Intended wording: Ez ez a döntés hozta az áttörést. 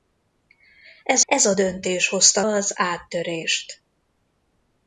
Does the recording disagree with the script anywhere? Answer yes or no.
no